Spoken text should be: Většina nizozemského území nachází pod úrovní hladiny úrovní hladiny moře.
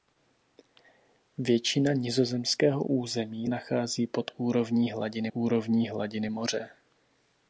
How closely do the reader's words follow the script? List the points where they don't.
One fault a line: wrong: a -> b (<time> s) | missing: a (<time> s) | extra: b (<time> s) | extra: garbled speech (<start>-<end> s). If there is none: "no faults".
no faults